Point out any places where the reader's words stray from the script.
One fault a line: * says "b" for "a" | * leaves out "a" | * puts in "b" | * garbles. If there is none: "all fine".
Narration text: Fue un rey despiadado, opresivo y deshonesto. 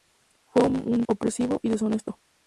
* leaves out "rey despiadado"